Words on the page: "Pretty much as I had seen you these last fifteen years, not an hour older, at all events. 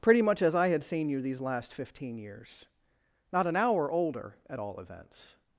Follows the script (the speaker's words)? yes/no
yes